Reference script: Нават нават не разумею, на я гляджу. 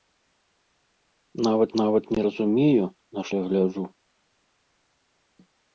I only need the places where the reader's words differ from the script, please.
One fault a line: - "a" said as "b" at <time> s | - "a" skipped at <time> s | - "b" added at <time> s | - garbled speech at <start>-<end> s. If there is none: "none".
none